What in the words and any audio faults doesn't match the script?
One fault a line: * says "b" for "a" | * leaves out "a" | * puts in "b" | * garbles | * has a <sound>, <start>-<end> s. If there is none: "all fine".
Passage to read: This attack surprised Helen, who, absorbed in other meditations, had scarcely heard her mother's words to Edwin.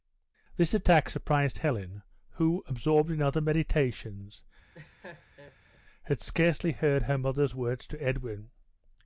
* has a laugh, 4.7-5.8 s